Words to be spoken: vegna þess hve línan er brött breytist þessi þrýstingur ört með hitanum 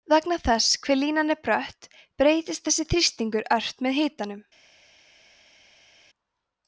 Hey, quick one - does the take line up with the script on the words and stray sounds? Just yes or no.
yes